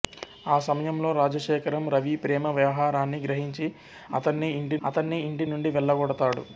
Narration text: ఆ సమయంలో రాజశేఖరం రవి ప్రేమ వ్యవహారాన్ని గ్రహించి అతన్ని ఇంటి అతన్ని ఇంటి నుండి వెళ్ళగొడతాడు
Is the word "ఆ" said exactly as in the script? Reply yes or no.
yes